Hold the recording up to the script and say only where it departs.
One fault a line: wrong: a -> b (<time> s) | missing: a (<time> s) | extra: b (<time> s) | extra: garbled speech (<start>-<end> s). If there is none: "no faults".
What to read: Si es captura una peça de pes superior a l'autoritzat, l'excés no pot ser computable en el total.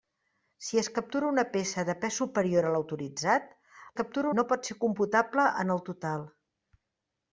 wrong: l'excés -> captura (4.0 s)